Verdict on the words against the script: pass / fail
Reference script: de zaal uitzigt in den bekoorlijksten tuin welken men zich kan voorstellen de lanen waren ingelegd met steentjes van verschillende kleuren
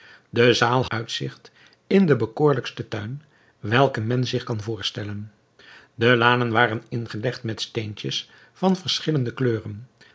pass